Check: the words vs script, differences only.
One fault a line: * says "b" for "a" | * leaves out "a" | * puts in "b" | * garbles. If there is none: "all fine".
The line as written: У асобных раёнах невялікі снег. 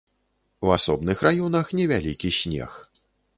all fine